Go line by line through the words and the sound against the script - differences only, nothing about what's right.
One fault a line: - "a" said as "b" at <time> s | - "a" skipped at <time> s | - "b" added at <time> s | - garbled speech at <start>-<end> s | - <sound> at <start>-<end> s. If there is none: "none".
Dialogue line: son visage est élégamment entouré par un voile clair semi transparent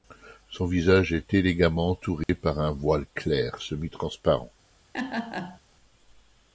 - dropout at 2.2-2.3 s
- laugh at 4.9-5.6 s